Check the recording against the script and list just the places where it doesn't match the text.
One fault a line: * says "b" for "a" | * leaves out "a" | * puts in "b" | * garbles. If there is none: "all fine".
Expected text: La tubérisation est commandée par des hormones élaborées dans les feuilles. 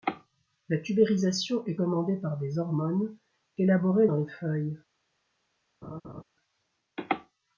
all fine